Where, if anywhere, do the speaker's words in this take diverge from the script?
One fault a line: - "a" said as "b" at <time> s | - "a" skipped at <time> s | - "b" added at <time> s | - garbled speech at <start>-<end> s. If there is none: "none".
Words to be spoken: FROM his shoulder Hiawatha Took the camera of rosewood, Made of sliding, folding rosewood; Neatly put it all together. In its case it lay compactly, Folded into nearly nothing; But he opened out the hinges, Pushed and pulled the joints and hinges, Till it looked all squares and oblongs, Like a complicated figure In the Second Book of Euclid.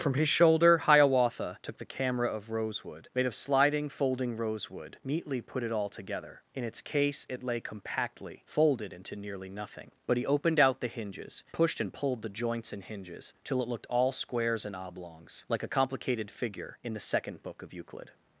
none